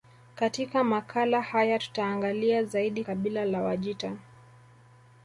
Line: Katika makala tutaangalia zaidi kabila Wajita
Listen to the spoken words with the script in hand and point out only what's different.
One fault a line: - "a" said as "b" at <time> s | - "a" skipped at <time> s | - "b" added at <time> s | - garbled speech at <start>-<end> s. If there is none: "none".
- "haya" added at 1.4 s
- "la" added at 3.4 s